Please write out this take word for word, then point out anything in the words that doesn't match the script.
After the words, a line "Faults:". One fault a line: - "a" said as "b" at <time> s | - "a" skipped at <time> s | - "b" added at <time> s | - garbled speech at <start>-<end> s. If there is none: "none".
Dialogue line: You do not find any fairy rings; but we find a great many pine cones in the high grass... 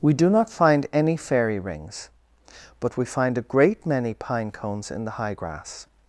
We do not find any fairy rings; but we find a great many pine cones in the high grass...
Faults:
- "You" said as "We" at 0.0 s